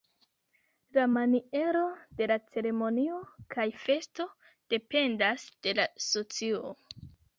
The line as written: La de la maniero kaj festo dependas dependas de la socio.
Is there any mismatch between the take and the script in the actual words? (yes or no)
yes